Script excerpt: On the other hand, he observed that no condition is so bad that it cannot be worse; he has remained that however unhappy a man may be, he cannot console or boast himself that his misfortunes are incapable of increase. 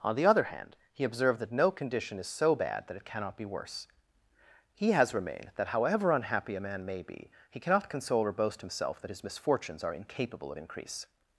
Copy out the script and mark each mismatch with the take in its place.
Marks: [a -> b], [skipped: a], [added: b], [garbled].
On the other hand, he observed that no condition is so bad that it cannot be worse; he has remained that however unhappy a man may be, he cannot console or boast himself that his misfortunes are incapable of increase.